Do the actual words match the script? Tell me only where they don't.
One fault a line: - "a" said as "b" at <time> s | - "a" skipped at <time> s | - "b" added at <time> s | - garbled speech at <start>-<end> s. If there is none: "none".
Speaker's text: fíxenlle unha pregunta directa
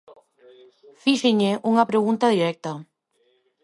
none